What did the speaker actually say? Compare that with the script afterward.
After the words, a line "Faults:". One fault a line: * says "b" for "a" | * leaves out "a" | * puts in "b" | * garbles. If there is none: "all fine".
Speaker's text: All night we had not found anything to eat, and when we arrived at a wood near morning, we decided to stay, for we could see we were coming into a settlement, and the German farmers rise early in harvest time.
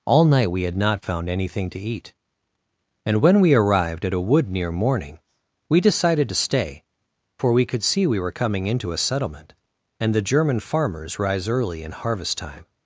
All night we had not found anything to eat, and when we arrived at a wood near morning, we decided to stay, for we could see we were coming into a settlement, and the German farmers rise early in harvest time.
Faults:
all fine